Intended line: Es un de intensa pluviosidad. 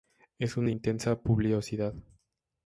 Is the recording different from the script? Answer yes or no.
no